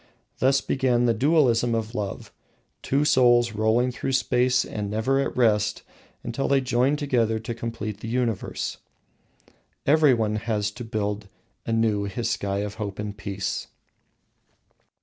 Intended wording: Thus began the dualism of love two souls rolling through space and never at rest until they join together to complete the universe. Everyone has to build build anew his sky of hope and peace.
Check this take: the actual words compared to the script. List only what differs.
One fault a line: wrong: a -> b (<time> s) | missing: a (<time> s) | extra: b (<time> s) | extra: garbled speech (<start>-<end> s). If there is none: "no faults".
missing: build (11.3 s)